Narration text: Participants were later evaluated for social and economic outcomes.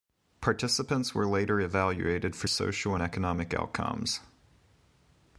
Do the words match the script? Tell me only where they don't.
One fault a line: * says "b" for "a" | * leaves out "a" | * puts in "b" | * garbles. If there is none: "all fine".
all fine